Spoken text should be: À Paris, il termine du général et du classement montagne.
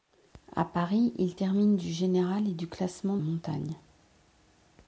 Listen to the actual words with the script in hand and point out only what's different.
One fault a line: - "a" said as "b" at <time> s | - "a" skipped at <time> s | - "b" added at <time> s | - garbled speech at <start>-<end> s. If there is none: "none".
none